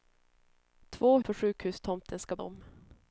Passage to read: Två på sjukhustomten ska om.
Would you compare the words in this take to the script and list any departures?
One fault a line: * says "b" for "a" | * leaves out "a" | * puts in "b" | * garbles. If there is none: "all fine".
all fine